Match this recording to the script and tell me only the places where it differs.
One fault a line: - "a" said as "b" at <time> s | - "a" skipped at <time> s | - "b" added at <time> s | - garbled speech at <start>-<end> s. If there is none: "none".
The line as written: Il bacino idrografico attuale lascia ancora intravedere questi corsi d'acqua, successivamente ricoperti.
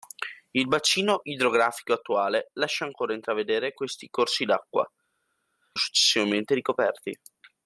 none